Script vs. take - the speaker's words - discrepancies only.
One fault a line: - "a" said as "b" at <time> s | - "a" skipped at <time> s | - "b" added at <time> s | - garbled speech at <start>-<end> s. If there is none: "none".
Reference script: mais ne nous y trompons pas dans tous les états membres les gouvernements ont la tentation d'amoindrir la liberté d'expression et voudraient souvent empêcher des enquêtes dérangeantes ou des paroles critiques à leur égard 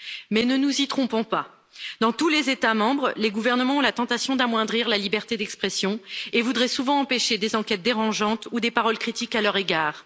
none